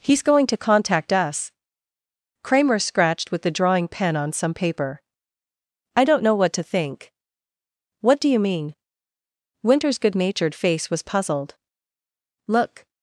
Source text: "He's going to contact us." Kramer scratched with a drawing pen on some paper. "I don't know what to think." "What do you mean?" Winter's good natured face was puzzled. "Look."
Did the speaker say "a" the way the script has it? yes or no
no